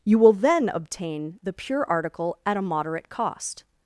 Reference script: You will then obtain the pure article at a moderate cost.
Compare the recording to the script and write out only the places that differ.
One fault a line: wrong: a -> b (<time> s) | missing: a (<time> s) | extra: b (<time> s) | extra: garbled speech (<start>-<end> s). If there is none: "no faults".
no faults